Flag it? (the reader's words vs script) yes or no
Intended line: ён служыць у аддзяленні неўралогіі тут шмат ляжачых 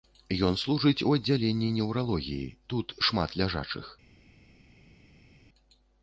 no